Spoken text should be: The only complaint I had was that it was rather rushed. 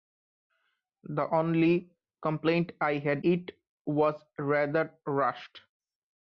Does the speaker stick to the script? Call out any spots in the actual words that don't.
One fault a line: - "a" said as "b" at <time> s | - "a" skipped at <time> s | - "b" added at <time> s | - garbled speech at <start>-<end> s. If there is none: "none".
- "was that" skipped at 3.2 s